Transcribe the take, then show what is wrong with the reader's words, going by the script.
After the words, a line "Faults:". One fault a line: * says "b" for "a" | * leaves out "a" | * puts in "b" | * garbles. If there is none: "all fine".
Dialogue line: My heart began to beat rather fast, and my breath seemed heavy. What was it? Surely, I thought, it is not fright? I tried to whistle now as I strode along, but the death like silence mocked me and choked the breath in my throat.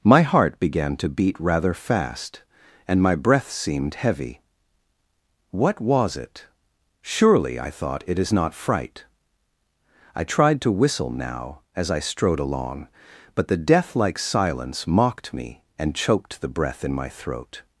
My heart began to beat rather fast, and my breath seemed heavy. What was it? Surely, I thought, it is not fright? I tried to whistle now as I strode along, but the death like silence mocked me and choked the breath in my throat.
Faults:
all fine